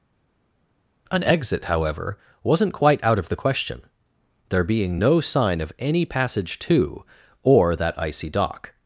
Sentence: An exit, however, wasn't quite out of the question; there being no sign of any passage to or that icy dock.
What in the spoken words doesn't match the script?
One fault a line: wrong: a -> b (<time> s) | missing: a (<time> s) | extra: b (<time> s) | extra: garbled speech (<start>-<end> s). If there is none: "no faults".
no faults